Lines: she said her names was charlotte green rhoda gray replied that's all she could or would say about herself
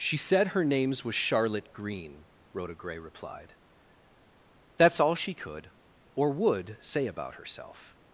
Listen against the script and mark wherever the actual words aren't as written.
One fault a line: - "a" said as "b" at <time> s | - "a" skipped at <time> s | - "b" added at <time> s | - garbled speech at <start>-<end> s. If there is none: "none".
none